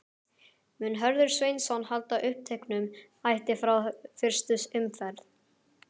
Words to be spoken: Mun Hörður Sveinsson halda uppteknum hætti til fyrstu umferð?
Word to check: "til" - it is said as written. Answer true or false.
false